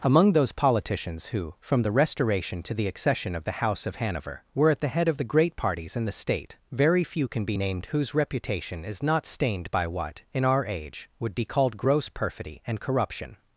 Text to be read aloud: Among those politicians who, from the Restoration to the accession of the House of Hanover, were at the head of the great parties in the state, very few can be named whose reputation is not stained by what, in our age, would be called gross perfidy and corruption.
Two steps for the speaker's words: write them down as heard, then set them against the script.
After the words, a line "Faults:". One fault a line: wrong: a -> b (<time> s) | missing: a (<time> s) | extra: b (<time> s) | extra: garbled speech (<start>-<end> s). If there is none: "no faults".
Among those politicians who, from the Restoration to the accession of the House of Hanover, were at the head of the great parties in the state, very few can be named whose reputation is not stained by what, in our age, would be called gross perfidy and corruption.
Faults:
no faults